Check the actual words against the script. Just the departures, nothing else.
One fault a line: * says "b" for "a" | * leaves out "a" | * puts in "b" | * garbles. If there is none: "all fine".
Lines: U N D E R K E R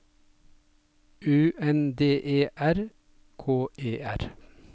all fine